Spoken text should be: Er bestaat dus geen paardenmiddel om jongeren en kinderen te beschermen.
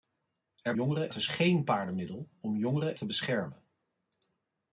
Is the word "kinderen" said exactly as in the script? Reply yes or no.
no